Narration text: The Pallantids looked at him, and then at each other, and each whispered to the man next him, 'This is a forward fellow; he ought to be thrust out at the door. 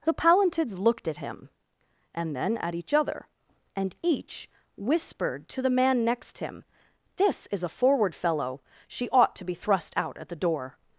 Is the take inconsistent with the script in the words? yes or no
yes